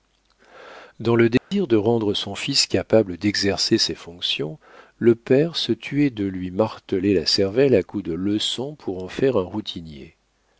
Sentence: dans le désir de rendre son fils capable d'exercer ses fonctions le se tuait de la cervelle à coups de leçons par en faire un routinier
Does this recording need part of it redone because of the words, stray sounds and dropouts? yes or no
yes